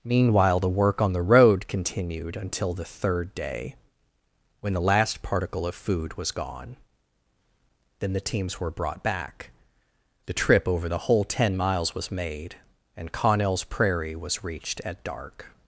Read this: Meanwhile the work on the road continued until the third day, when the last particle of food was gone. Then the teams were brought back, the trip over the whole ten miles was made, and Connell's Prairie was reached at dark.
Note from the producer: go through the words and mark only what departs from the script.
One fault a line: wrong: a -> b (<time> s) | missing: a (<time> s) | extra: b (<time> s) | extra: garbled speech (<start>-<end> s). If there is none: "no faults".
no faults